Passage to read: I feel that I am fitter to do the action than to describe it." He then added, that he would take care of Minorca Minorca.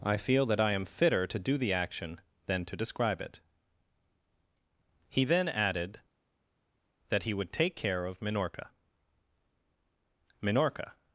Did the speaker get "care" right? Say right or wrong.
right